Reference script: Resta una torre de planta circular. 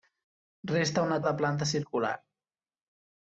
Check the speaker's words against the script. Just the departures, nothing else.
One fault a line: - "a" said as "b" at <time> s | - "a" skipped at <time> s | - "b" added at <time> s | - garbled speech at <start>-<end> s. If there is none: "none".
- "torre" skipped at 1.2 s